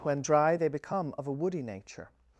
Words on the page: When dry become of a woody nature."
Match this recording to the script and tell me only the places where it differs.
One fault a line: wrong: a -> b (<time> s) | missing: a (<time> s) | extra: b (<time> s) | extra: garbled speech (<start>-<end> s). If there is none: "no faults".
extra: they (0.5 s)